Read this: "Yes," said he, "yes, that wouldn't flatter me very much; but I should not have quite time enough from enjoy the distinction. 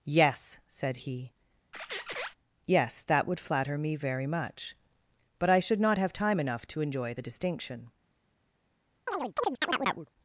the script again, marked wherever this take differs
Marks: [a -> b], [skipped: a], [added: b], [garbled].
"Yes," said he, "yes, that [wouldn't -> would] flatter me very much; but I should not have [skipped: quite] time enough [from -> to] enjoy the distinction.